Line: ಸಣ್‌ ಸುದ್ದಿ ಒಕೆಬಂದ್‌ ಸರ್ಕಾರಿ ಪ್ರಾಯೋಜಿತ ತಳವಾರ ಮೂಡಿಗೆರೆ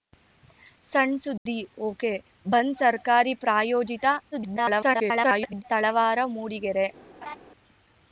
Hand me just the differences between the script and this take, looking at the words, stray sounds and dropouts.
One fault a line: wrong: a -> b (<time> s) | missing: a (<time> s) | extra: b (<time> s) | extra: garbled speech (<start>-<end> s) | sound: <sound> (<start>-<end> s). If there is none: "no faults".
sound: dropout (1.4-1.5 s)
extra: garbled speech (4.3-5.6 s)
sound: laugh (7.2-7.4 s)